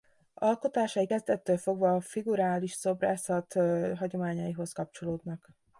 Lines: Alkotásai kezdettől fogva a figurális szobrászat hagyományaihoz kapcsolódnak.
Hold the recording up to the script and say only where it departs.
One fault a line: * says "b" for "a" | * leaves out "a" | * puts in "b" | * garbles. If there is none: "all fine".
all fine